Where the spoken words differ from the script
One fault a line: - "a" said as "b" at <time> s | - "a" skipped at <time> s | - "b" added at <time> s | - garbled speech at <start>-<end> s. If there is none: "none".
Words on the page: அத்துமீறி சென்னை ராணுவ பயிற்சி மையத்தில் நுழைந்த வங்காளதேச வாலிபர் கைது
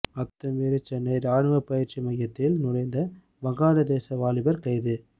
none